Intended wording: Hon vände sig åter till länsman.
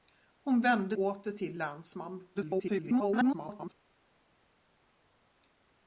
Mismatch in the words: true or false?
true